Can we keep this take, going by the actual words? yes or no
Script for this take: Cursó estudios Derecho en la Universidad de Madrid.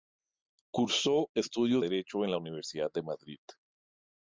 yes